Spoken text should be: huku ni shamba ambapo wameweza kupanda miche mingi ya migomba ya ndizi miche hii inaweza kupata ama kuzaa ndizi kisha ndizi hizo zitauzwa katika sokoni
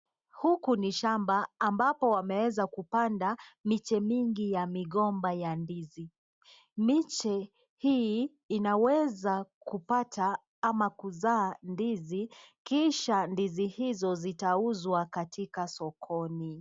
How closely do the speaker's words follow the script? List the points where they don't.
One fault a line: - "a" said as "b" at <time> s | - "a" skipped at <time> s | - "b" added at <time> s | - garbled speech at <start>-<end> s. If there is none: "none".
none